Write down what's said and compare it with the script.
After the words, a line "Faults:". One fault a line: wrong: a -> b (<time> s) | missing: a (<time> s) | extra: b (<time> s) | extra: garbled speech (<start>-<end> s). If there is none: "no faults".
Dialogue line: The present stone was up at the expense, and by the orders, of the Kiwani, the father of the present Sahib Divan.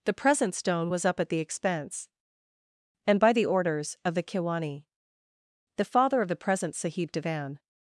The present stone was up at the expense, and by the orders, of the Kiwani, the father of the present Sahib Divan.
Faults:
no faults